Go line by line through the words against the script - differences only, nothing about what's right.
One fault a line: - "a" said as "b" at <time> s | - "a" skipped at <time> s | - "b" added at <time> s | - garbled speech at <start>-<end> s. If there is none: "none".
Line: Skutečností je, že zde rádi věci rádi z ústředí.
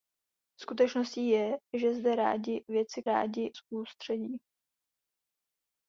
none